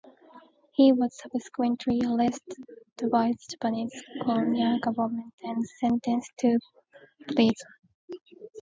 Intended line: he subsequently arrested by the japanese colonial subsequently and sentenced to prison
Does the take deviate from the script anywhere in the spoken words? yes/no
yes